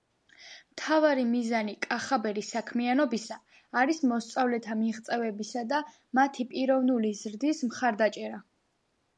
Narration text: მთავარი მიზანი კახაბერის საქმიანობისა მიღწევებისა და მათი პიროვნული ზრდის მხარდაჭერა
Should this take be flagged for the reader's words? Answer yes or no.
yes